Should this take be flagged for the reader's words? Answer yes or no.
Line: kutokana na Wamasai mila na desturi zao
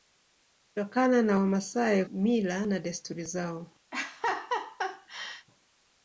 no